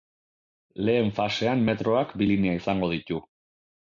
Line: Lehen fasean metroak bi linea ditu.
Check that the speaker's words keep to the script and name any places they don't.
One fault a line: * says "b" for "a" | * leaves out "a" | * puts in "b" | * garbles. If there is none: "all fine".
* puts in "izango"